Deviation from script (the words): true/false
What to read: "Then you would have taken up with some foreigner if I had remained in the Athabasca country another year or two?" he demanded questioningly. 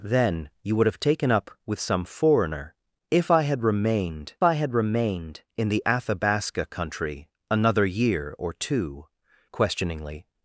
true